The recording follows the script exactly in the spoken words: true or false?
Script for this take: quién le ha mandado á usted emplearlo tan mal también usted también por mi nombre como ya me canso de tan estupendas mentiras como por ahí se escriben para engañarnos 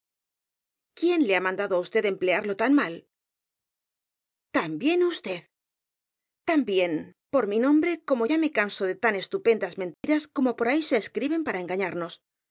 true